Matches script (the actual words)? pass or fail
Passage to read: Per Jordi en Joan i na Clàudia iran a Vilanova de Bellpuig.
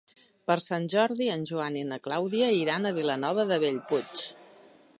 fail